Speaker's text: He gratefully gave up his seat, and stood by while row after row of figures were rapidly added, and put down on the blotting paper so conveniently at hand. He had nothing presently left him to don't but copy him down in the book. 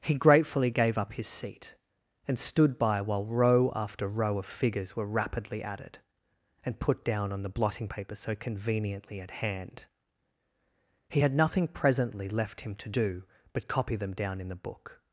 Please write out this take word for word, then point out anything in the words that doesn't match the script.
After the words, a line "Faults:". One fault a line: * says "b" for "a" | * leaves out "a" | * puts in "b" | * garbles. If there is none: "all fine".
He gratefully gave up his seat, and stood by while row after row of figures were rapidly added, and put down on the blotting paper so conveniently at hand. He had nothing presently left him to do but copy them down in the book.
Faults:
* says "do" for "don't"
* says "them" for "him"